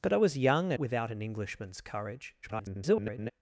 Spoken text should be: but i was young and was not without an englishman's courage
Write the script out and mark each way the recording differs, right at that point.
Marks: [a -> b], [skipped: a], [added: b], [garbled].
but i was young [skipped: and was not] without an englishman's courage [garbled]